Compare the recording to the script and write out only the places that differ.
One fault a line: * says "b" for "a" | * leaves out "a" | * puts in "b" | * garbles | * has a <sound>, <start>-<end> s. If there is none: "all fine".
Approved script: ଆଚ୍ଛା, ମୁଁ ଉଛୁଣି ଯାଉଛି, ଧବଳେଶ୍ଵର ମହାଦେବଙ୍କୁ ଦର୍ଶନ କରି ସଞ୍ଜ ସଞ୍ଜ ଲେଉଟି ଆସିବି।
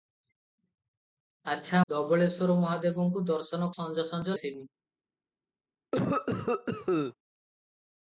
* leaves out "ମୁଁ ଉଛୁଣି ଯାଉଛି"
* leaves out "କରି"
* leaves out "ଲେଉଟି"
* has a cough, 5.9-7.1 s